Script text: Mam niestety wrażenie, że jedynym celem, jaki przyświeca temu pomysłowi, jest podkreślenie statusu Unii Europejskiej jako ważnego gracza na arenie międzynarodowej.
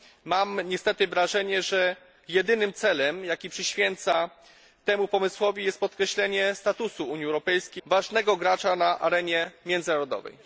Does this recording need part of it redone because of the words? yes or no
yes